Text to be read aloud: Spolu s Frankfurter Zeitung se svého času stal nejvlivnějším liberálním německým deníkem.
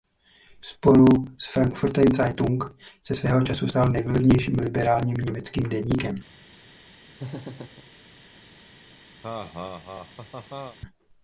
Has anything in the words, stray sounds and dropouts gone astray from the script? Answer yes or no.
yes